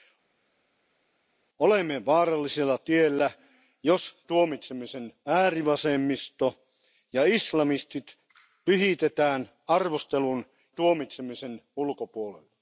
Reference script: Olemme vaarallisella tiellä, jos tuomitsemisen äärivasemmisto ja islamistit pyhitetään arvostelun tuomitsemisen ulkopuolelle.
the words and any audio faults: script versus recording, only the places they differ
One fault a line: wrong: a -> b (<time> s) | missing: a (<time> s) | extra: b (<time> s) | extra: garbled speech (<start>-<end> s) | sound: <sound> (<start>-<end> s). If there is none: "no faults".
no faults